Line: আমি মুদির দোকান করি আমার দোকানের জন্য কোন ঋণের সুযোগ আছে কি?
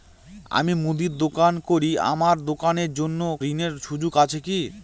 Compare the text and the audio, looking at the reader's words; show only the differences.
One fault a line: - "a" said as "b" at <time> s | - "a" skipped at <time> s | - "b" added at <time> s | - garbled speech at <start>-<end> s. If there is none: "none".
- "কোন" skipped at 3.2 s